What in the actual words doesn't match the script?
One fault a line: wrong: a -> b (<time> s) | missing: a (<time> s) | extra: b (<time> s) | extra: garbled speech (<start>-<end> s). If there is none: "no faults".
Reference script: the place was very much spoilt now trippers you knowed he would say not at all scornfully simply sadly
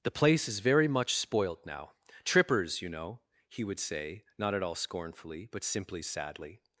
wrong: was -> is (0.5 s)
wrong: knowed -> know (2.9 s)
extra: but (5.5 s)